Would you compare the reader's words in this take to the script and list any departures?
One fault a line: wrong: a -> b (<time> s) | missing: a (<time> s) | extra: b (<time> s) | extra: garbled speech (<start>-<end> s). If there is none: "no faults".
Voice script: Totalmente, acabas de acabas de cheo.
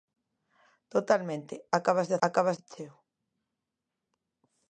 no faults